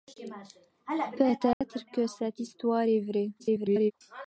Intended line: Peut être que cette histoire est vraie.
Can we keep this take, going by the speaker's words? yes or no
no